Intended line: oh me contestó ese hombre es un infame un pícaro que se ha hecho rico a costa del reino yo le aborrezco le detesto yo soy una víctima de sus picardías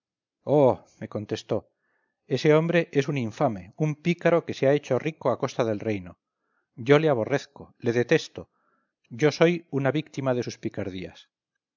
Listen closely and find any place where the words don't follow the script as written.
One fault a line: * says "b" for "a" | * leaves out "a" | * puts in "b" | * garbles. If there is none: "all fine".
all fine